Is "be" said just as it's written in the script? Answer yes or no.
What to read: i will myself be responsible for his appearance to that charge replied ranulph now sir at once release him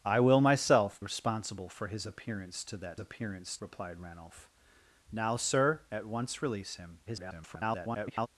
no